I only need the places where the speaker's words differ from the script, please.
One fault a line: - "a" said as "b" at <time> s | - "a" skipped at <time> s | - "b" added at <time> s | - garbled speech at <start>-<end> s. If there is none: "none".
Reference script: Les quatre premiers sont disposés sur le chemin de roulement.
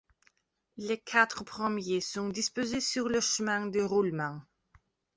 none